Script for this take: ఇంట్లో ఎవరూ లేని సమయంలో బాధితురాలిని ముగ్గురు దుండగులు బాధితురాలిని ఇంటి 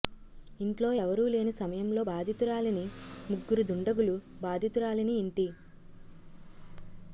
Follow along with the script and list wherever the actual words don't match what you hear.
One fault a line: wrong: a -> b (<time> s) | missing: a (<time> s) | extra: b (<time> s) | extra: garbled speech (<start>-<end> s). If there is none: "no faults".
no faults